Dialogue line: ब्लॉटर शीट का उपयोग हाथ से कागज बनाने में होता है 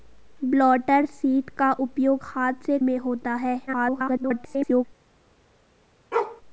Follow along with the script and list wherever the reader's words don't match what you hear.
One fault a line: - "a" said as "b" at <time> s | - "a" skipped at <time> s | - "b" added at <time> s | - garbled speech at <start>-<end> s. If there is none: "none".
- "कागज बनाने" skipped at 2.8 s
- garbled speech at 3.7-4.9 s